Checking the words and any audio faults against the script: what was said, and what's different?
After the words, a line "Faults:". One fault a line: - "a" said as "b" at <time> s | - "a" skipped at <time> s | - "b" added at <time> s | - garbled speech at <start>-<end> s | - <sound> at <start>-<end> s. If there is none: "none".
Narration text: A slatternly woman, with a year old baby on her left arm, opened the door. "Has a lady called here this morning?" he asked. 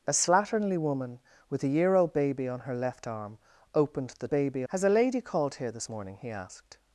A slatternly woman, with a year old baby on her left arm, opened the baby. "Has a lady called here this morning?" he asked.
Faults:
- "door" said as "baby" at 4.3 s